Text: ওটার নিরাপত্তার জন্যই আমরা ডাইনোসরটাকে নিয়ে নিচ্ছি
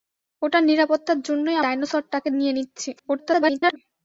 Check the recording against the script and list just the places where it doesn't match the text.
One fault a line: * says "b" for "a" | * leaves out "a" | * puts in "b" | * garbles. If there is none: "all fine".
* leaves out "আমরা"
* garbles